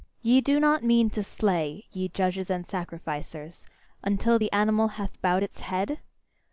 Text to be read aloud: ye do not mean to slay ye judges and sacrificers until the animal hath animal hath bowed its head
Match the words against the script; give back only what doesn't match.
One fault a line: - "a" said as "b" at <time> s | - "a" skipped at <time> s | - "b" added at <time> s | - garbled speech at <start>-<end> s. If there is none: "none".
- "animal hath" skipped at 5.2 s